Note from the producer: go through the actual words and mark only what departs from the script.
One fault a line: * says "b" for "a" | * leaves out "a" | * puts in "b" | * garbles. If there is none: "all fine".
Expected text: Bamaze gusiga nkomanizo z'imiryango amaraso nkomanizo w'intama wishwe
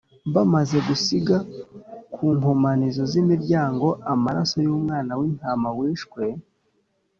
* puts in "ku"
* says "y'umwana" for "nkomanizo"